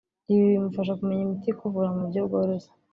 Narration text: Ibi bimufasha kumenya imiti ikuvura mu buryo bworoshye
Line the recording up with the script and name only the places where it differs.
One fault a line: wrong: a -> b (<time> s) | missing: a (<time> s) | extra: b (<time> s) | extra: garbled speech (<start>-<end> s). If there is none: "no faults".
no faults